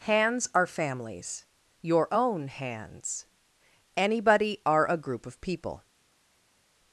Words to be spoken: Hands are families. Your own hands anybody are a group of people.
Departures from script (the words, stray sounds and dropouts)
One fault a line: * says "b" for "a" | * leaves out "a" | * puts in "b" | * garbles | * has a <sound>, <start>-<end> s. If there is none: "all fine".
all fine